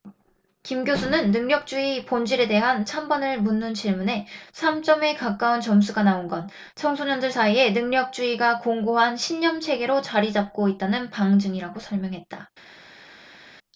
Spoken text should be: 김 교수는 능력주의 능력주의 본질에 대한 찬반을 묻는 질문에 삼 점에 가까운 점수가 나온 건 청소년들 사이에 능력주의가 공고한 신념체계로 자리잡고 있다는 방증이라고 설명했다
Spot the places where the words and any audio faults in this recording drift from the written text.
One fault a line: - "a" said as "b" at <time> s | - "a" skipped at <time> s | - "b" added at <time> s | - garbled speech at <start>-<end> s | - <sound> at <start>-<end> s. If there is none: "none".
- "능력주의" skipped at 2.0 s